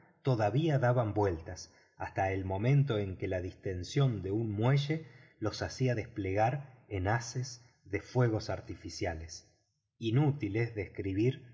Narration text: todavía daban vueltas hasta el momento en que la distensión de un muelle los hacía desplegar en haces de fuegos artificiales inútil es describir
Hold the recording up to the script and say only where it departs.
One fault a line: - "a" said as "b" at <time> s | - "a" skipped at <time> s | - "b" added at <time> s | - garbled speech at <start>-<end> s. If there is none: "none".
none